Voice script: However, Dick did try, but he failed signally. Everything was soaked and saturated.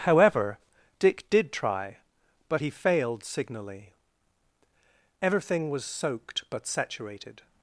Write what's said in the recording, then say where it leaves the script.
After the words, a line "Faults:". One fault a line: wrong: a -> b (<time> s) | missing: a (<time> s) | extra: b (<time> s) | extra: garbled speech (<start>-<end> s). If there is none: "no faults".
However, Dick did try, but he failed signally. Everything was soaked but saturated.
Faults:
wrong: and -> but (6.5 s)